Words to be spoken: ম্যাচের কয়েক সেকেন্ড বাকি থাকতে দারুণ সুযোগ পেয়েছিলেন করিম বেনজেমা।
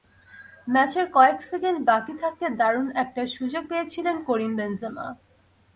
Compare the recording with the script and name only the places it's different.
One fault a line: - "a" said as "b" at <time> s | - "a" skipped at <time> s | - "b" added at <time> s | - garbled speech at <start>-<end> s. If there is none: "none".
- "একটা" added at 3.0 s